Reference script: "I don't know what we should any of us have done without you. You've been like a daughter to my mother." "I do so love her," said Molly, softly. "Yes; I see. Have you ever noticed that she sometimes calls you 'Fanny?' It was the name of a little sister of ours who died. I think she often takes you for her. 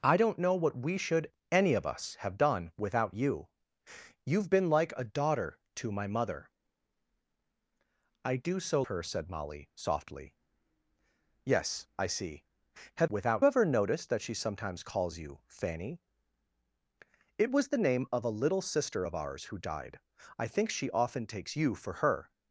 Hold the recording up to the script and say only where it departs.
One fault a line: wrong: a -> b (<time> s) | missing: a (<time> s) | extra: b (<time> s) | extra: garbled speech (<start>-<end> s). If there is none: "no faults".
missing: love (8.8 s)
wrong: you -> without (13.1 s)